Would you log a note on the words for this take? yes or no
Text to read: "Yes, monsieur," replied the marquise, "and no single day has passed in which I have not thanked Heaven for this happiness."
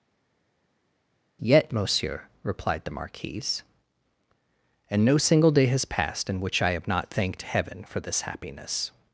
yes